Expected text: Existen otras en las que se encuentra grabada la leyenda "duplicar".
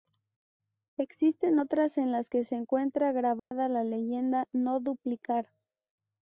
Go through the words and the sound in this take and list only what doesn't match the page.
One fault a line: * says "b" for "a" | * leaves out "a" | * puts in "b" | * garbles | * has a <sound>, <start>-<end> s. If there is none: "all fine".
* has a dropout, 3.4-3.5 s
* puts in "no"